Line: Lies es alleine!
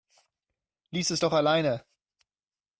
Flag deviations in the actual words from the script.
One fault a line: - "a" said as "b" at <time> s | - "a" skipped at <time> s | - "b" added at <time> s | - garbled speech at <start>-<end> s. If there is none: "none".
- "doch" added at 1.2 s